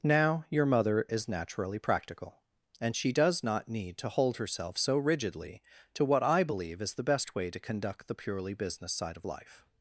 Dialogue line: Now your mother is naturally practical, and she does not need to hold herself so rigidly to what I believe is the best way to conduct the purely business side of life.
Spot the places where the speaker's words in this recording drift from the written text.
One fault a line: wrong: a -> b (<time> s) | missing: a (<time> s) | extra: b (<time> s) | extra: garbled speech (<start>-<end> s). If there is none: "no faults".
no faults